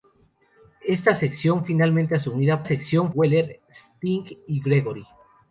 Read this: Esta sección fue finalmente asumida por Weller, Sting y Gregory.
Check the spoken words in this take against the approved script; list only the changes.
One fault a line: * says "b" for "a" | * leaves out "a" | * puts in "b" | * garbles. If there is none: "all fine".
* leaves out "fue"
* says "sección" for "por"